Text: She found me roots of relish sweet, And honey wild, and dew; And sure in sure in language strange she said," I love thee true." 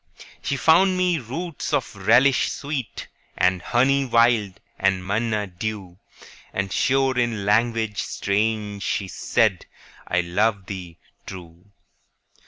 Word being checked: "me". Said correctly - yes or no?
yes